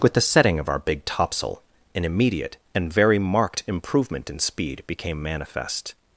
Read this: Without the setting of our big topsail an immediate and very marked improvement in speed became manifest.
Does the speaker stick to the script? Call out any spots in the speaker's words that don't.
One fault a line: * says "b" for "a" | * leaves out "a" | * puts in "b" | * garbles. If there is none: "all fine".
* says "With" for "Without"